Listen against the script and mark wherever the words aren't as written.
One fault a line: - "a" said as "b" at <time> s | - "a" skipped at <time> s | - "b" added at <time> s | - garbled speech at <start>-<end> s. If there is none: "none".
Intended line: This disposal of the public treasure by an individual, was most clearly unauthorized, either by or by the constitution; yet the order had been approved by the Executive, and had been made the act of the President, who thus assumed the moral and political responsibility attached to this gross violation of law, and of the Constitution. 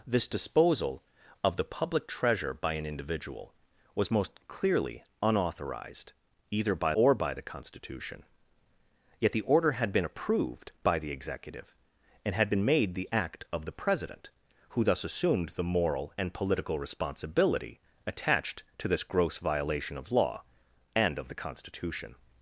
none